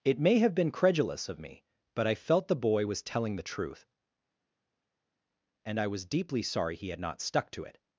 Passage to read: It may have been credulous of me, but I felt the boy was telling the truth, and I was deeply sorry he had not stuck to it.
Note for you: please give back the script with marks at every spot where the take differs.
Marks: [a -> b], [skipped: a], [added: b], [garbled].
It may have been credulous of me, but I felt the boy was telling the truth, and I was deeply sorry he had not stuck to it.